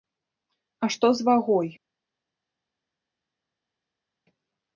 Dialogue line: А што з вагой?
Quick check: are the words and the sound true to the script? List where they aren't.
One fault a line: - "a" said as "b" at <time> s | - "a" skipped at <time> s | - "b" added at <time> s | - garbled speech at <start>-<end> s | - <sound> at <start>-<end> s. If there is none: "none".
none